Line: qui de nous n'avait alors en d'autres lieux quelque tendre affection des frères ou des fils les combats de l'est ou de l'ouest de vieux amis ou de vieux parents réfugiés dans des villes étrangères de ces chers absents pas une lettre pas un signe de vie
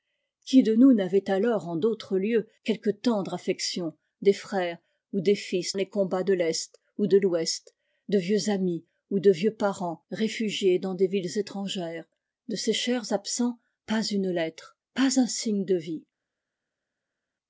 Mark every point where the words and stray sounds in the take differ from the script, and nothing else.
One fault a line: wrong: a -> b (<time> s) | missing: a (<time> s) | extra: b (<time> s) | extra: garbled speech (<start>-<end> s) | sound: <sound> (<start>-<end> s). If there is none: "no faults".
no faults